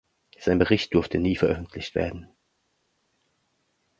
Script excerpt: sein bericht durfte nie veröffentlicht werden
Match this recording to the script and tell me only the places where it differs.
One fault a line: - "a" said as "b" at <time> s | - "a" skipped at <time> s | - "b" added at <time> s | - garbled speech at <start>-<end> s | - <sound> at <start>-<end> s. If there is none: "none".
none